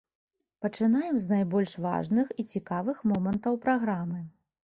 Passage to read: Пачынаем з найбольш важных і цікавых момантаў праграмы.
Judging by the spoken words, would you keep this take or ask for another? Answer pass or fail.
pass